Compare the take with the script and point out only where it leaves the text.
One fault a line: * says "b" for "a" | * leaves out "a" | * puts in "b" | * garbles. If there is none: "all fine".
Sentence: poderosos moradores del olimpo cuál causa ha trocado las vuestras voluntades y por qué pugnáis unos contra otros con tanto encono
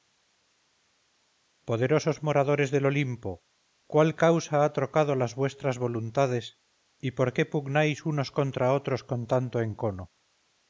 all fine